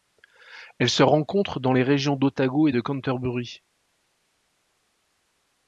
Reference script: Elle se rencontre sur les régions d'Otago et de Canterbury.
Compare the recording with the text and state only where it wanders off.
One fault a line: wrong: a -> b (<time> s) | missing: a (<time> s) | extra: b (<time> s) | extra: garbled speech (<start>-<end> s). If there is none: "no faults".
wrong: sur -> dans (1.6 s)